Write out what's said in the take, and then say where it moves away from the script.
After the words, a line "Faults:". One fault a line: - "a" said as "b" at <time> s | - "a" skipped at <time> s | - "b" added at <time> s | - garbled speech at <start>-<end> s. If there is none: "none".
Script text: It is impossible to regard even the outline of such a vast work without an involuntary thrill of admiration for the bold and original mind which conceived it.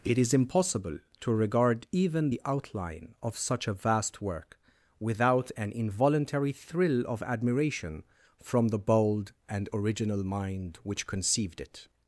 It is impossible to regard even the outline of such a vast work without an involuntary thrill of admiration from the bold and original mind which conceived it.
Faults:
- "for" said as "from" at 8.4 s